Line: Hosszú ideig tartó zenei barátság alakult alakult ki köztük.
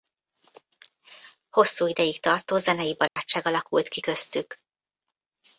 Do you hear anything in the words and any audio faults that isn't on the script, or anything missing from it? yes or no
yes